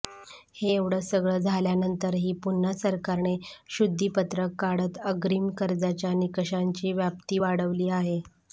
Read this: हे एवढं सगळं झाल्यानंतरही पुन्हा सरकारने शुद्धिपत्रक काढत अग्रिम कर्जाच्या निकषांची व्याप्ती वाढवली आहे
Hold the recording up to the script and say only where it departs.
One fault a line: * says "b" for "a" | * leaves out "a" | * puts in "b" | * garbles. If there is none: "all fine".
all fine